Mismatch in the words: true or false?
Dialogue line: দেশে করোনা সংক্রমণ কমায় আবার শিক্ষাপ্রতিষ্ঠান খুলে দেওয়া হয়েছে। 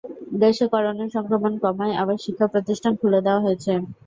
false